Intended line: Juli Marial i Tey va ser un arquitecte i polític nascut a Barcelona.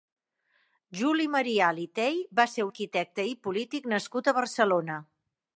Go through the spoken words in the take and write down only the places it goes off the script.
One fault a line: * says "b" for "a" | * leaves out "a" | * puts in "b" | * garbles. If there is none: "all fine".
* leaves out "un"